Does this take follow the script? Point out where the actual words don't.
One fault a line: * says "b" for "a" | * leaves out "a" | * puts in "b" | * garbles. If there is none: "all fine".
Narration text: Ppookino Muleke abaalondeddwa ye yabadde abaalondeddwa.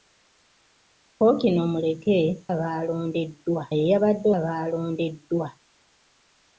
all fine